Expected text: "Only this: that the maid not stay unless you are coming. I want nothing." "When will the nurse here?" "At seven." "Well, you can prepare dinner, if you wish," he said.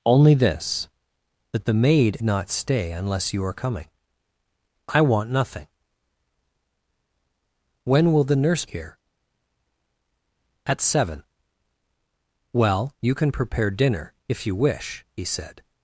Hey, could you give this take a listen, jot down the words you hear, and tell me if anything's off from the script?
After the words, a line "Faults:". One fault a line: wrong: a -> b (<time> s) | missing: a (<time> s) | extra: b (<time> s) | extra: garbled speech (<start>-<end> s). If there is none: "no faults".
"Only this: that the maid not stay unless you are coming. I want nothing." "When will the nurse here?" "At seven." "Well, you can prepare dinner, if you wish," he said.
Faults:
no faults